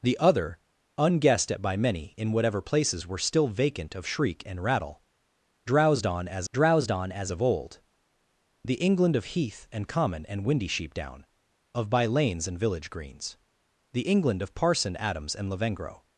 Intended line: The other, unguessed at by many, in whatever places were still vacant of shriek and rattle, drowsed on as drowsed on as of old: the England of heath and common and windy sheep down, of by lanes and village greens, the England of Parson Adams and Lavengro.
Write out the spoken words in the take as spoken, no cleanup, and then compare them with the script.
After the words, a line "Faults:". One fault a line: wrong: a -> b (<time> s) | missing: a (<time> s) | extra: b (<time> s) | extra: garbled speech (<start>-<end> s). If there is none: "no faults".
The other, unguessed at by many, in whatever places were still vacant of shriek and rattle, drowsed on as drowsed on as of old: the England of heath and common and windy sheep down, of by lanes and village greens, the England of Parson Adams and Lavengro.
Faults:
no faults